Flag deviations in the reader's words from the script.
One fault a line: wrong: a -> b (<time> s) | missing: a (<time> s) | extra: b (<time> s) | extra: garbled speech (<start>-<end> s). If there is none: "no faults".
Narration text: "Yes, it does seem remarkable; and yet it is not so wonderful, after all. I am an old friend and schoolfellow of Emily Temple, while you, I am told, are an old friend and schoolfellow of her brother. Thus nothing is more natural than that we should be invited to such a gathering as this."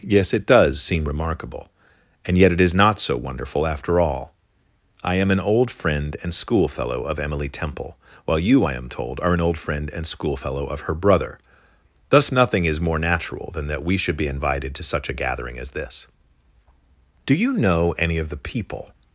extra: Do you know any of the people (17.2 s)